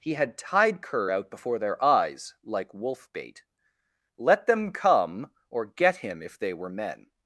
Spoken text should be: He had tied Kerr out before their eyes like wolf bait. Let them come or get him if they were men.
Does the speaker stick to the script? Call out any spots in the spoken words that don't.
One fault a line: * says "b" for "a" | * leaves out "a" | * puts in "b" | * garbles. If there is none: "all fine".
all fine